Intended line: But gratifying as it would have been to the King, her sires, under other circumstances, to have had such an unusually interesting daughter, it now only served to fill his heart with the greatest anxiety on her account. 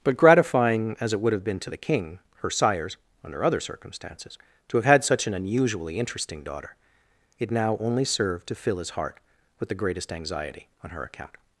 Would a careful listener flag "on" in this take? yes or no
no